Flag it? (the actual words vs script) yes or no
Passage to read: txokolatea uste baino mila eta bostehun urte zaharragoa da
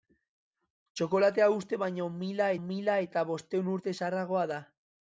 yes